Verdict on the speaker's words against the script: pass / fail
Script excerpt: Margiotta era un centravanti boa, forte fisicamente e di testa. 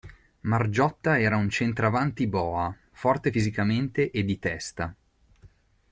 pass